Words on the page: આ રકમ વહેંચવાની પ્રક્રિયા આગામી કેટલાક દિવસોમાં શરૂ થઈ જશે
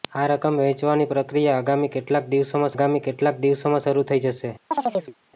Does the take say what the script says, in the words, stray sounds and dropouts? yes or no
no